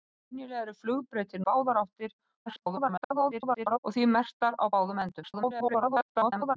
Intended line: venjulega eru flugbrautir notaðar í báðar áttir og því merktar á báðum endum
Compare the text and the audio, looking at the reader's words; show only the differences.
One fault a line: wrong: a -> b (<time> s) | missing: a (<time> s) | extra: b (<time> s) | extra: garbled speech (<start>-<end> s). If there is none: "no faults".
missing: notaðar (1.4 s)
extra: garbled speech (2.5-3.8 s)
extra: garbled speech (5.2-6.6 s)